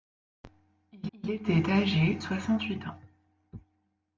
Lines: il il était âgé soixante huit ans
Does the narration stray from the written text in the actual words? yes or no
no